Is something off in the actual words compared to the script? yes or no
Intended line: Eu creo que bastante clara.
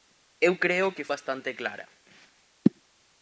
no